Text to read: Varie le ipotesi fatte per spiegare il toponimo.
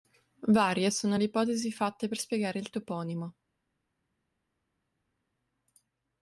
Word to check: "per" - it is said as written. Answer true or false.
true